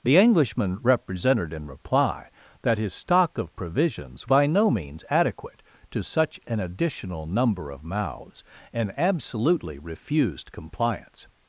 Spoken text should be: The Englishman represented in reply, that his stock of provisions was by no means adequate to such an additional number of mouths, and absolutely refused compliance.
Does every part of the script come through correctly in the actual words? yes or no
no